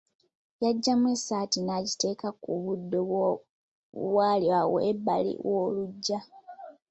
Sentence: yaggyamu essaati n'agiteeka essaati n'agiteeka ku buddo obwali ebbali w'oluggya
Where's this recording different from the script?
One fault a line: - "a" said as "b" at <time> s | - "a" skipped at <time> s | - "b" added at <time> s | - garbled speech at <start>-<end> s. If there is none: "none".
- "essaati n'agiteeka" skipped at 2.3 s
- "awo" added at 4.6 s